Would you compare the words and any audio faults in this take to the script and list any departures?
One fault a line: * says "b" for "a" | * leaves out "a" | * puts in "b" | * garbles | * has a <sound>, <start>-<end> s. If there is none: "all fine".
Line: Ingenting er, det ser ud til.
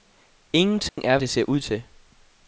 * has a dropout, 0.9-1.0 s